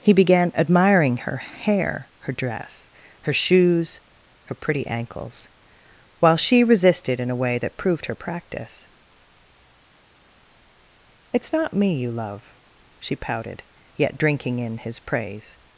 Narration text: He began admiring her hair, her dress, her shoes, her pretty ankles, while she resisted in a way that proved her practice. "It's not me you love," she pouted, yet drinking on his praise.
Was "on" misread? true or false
true